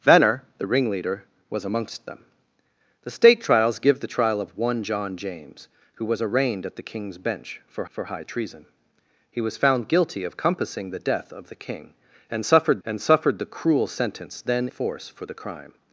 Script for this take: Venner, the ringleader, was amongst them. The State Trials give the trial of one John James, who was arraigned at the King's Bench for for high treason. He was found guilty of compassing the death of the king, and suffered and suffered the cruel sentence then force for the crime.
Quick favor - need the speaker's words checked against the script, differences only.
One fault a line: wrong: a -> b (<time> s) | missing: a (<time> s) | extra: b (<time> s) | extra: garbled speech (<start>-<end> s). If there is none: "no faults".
no faults